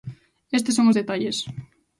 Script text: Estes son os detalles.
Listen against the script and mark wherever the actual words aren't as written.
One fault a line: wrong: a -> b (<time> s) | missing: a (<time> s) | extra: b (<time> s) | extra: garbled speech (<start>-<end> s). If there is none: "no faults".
no faults